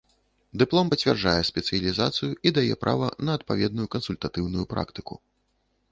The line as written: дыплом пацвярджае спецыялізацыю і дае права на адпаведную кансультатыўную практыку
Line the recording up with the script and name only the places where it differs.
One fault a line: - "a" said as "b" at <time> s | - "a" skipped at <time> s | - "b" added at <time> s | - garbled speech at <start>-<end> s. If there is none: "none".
none